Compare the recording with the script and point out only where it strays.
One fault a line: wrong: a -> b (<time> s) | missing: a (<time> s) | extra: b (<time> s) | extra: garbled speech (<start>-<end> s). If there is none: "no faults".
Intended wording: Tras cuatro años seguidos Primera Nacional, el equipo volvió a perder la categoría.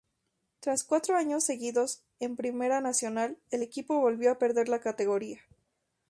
extra: en (2.2 s)